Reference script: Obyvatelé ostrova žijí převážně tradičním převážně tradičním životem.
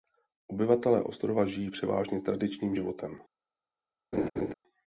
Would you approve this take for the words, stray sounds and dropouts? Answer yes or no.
no